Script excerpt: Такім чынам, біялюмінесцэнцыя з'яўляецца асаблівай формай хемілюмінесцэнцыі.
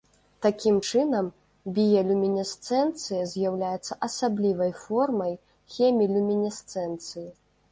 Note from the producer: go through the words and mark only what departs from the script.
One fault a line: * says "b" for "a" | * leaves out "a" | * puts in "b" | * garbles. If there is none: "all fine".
all fine